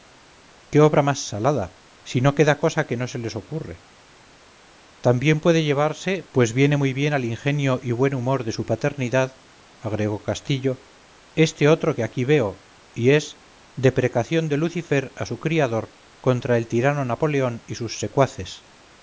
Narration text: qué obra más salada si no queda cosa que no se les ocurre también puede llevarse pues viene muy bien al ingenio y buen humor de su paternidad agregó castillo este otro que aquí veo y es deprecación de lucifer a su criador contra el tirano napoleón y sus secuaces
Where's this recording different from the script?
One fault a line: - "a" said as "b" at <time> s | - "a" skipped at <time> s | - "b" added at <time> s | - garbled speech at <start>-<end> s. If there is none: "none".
none